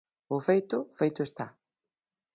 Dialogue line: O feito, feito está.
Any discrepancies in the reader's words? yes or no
no